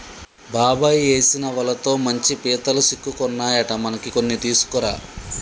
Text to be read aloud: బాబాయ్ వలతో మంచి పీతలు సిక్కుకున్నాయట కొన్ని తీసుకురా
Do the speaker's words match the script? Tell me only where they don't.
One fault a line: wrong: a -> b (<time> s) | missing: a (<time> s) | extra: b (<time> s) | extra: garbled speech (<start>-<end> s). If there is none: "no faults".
extra: ఏసిన (1.1 s)
extra: మనకి (3.8 s)